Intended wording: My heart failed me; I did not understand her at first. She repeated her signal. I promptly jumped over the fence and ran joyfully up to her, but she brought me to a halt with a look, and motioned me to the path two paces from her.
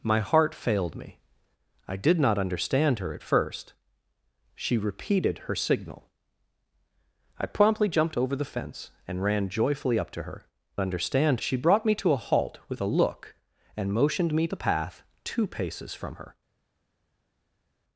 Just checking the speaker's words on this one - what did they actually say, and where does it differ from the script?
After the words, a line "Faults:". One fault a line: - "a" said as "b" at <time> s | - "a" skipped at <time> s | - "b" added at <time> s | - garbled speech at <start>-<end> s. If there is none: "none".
My heart failed me; I did not understand her at first. She repeated her signal. I promptly jumped over the fence and ran joyfully up to her, understand she brought me to a halt with a look, and motioned me the path two paces from her.
Faults:
- "but" said as "understand" at 10.8 s
- "to" skipped at 14.5 s